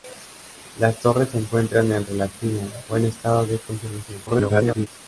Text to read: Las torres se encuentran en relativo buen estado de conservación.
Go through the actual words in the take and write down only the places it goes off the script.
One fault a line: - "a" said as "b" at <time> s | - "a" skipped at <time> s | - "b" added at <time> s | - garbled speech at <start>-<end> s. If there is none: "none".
- garbled speech at 4.3-4.9 s